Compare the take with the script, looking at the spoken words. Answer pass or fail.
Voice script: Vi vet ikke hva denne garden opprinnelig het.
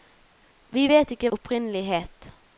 fail